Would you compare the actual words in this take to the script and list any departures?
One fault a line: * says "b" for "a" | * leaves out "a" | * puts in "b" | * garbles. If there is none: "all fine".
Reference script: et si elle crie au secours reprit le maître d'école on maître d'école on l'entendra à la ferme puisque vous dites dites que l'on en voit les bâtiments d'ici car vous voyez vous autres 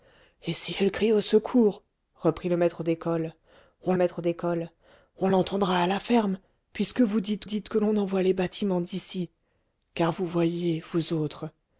all fine